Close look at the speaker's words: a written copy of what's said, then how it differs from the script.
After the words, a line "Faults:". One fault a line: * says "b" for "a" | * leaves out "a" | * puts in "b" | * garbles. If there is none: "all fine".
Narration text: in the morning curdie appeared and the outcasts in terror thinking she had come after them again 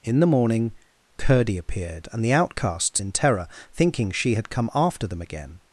in the morning curdie appeared and the outcasts in terror thinking she had come after them again
Faults:
all fine